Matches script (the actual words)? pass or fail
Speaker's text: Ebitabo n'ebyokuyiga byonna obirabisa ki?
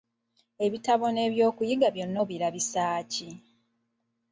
pass